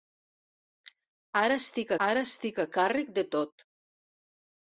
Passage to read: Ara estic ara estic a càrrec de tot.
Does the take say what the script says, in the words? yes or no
yes